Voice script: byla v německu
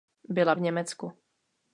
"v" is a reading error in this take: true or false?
false